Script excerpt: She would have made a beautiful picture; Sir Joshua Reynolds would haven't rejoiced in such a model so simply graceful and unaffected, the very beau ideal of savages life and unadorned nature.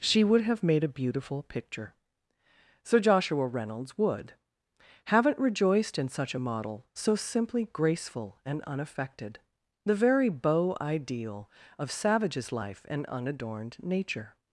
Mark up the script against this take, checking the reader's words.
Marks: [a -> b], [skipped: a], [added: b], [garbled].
She would have made a beautiful picture; Sir Joshua Reynolds would haven't rejoiced in such a model so simply graceful and unaffected, the very beau ideal of savages life and unadorned nature.